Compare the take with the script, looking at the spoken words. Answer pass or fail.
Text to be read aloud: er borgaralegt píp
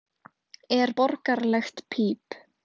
pass